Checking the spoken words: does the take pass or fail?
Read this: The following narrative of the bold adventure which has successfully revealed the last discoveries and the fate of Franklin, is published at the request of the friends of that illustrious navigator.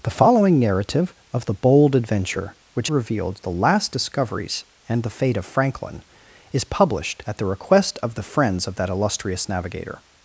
fail